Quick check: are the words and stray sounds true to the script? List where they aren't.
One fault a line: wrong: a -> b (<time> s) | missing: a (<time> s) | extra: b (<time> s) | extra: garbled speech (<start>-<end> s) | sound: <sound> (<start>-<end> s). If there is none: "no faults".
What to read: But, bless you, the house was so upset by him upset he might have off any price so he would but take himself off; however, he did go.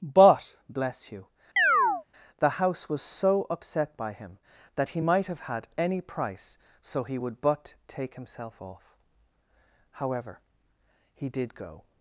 sound: chirp (1.6-2.0 s)
wrong: upset -> that (4.8 s)
wrong: off -> had (5.4 s)